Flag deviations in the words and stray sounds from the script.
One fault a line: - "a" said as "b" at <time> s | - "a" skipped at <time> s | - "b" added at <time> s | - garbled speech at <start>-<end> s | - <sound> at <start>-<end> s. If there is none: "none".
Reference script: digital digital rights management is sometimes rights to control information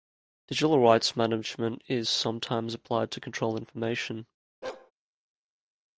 - "digital" skipped at 0.8 s
- "rights" said as "applied" at 2.7 s
- bark at 4.6-4.9 s